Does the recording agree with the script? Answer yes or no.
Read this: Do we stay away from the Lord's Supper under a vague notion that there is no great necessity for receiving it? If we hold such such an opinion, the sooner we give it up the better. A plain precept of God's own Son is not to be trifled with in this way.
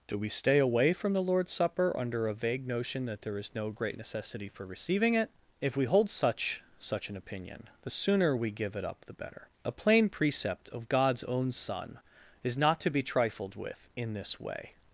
yes